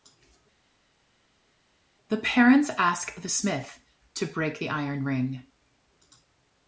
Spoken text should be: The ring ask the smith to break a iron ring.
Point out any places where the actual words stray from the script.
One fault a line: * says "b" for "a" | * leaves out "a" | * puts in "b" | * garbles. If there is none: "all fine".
* says "parents" for "ring"
* says "the" for "a"